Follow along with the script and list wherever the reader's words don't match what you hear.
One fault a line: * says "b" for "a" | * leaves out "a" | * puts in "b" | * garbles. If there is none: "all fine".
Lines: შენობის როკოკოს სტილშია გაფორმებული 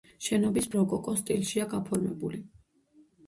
all fine